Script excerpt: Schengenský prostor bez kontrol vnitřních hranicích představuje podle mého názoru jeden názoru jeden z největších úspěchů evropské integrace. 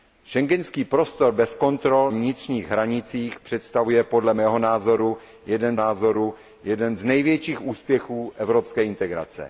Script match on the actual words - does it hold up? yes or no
yes